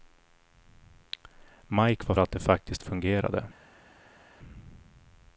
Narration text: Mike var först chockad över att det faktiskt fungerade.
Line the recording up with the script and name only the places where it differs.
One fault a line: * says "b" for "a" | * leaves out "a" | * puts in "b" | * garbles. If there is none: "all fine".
* leaves out "först chockad över"